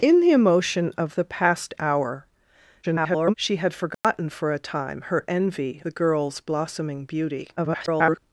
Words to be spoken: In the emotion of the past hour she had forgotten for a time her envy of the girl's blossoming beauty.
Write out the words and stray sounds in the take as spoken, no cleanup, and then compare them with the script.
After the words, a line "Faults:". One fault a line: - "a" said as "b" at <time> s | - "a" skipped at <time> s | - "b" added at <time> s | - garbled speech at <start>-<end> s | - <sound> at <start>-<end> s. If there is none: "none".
In the emotion of the past hour [garbled] she had forgotten for a time her envy the girl's blossoming beauty. [garbled]
Faults:
- garbled speech at 2.8-3.3 s
- dropout at 3.9-4.0 s
- "of" skipped at 5.8 s
- garbled speech at 7.6-8.2 s